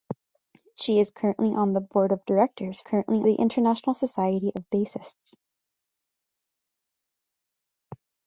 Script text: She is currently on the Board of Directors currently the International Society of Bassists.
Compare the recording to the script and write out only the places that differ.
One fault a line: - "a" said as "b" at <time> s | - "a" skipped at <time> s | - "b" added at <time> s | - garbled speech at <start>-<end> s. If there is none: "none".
none